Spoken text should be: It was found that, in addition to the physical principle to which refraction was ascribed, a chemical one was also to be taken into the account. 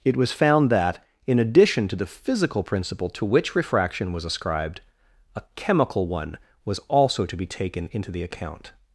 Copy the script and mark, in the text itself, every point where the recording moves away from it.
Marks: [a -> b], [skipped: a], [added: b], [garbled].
It was found that, in addition to the physical principle to which refraction was ascribed, a chemical one was also to be taken into the account.